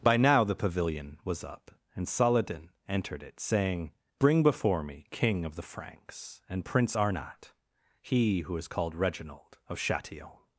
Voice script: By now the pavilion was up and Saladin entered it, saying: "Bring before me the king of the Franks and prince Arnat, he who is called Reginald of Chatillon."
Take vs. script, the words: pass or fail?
fail